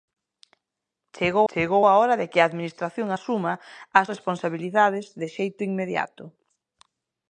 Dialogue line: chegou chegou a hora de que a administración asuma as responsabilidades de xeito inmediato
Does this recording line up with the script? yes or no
yes